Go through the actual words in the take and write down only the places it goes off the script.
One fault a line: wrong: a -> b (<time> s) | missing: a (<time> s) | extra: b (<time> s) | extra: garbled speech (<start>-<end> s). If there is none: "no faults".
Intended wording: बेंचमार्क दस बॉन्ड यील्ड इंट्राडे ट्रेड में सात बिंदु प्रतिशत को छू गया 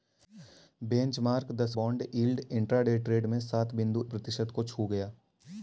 no faults